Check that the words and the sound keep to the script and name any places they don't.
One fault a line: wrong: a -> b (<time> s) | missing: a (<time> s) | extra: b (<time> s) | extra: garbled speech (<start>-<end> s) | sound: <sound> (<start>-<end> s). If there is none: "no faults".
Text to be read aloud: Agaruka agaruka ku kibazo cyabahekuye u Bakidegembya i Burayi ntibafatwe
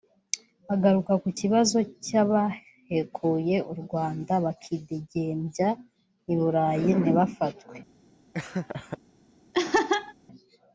missing: agaruka (1.1 s)
extra: Rwanda (3.8 s)
sound: laugh (8.3-9.0 s)
sound: laugh (9.5-10.1 s)